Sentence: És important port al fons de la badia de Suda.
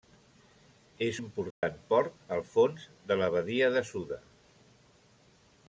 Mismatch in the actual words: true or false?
false